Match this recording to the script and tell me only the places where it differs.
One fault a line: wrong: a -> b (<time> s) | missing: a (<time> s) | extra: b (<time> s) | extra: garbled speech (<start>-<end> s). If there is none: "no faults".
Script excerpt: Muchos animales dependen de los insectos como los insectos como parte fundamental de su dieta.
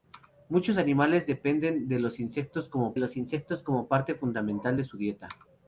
no faults